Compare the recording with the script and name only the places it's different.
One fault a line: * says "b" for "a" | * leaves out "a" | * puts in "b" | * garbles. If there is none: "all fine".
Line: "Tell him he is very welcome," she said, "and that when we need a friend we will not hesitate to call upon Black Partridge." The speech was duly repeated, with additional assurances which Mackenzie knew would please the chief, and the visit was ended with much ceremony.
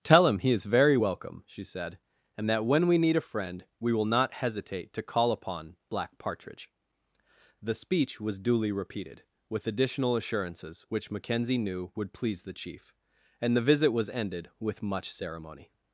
all fine